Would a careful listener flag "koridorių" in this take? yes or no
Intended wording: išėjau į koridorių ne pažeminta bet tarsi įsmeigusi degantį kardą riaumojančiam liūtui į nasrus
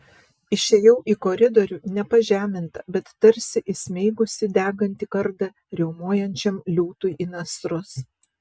no